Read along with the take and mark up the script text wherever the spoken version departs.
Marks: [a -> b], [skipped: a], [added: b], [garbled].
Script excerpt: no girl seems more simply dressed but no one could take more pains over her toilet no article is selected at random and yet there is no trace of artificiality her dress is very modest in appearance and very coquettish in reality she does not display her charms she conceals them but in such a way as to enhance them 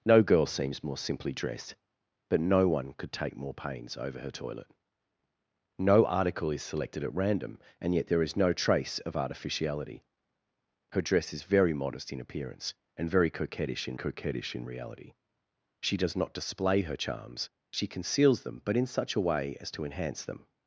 no girl seems more simply dressed but no one could take more pains over her toilet no article is selected at random and yet there is no trace of artificiality her dress is very modest in appearance and very coquettish in [added: coquettish in] reality she does not display her charms she conceals them but in such a way as to enhance them